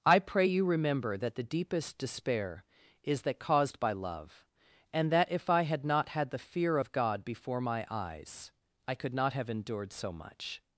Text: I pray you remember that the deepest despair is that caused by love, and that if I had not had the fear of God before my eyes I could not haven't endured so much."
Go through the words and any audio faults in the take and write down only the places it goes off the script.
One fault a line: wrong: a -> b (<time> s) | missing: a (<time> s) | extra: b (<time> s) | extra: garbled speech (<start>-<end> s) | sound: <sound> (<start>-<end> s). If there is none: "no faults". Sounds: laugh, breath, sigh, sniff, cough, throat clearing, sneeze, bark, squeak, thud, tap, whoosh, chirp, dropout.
wrong: haven't -> have (9.3 s)